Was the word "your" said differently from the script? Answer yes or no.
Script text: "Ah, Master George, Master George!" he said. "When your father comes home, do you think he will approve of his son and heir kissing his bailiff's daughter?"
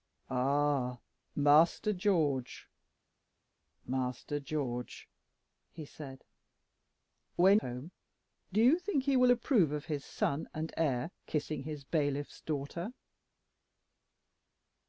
yes